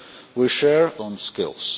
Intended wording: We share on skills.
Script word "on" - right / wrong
right